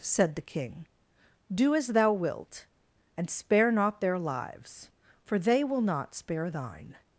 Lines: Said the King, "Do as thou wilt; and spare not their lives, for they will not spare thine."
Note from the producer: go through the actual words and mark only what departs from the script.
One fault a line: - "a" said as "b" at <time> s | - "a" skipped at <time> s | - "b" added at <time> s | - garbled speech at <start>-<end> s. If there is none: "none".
none